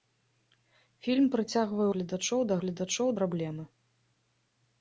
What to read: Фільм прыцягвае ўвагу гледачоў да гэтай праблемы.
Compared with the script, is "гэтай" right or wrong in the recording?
wrong